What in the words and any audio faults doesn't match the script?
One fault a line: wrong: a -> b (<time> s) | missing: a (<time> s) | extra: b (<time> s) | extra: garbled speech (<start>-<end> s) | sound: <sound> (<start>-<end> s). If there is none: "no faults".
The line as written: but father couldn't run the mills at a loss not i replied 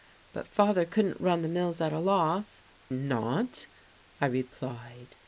no faults